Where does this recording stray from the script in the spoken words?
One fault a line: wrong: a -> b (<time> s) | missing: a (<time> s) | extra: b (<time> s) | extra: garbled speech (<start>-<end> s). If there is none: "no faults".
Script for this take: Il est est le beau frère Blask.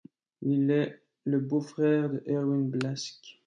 missing: est (1.0 s)
extra: de Erwin (2.1 s)